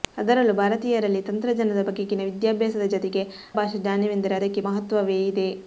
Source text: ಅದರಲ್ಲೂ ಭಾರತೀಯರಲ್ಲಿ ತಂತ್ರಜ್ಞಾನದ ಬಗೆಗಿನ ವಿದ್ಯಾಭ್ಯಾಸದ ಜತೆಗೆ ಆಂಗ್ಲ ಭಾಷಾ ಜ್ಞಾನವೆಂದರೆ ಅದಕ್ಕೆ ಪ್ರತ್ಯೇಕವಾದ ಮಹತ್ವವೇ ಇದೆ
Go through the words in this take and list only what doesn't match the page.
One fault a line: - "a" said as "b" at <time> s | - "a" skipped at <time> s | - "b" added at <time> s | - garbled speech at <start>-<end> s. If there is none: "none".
- "ಆಂಗ್ಲ" skipped at 3.2 s
- "ಪ್ರತ್ಯೇಕವಾದ" skipped at 4.6 s